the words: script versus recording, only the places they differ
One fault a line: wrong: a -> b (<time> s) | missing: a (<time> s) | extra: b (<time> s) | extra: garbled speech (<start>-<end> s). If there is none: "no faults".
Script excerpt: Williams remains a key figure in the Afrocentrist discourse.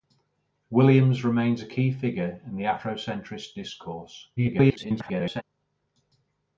extra: garbled speech (4.4-5.4 s)